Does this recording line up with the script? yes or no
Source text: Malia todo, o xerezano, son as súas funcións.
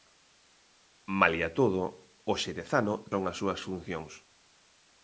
yes